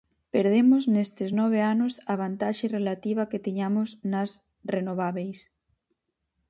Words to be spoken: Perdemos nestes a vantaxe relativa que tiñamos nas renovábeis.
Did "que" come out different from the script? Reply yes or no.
no